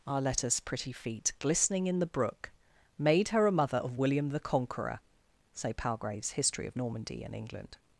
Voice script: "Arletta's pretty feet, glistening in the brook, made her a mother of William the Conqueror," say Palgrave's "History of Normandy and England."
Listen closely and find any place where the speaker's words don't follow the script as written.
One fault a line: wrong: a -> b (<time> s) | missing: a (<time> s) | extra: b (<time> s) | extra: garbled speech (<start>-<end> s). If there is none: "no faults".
no faults